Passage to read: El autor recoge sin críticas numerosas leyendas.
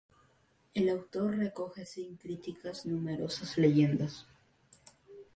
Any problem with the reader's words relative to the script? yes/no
no